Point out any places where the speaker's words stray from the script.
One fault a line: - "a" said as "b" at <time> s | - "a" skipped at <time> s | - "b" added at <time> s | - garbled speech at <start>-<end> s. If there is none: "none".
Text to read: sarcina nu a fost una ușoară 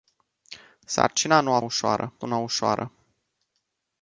- "fost" said as "ușoară" at 1.6 s